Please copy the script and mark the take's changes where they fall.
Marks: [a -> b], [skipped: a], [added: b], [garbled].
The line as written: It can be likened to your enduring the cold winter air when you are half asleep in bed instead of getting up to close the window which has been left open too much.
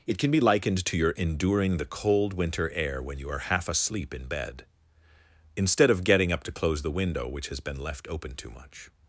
It can be likened to your enduring the cold winter air when you are half asleep in bed instead of getting up to close the window which has been left open too much.